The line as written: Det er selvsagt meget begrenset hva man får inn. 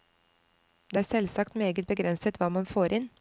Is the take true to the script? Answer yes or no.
yes